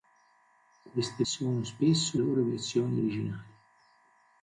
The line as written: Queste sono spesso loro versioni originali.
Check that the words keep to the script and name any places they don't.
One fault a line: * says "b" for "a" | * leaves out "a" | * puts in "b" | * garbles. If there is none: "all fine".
all fine